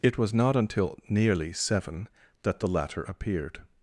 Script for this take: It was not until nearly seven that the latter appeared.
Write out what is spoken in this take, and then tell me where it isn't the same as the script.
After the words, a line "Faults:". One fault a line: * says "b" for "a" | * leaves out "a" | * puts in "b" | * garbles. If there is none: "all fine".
It was not until nearly seven that the latter appeared.
Faults:
all fine